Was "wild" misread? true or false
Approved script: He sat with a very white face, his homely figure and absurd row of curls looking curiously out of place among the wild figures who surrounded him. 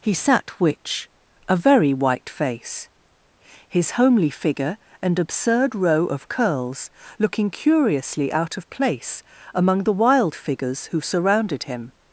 false